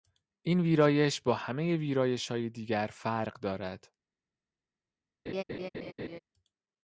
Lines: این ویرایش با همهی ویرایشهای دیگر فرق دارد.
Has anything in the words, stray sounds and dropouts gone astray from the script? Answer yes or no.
yes